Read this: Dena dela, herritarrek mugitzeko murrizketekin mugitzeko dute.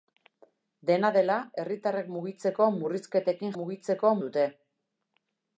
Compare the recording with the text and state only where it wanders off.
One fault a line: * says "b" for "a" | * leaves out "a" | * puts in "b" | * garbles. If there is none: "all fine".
all fine